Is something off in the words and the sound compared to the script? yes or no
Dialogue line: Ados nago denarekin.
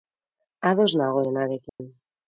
yes